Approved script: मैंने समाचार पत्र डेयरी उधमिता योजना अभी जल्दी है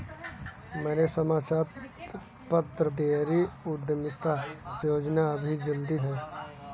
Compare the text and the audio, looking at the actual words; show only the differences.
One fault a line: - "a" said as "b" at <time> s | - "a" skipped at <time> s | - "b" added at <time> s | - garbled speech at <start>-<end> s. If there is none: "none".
none